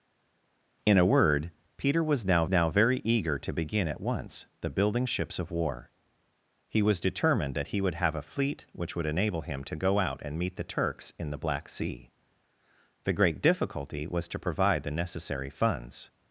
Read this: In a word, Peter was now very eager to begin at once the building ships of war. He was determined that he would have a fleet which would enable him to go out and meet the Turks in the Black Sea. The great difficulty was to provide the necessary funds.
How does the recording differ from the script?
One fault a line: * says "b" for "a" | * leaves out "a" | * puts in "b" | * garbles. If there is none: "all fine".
* puts in "now"